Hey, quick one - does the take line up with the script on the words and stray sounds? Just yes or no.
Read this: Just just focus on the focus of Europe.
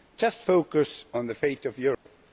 no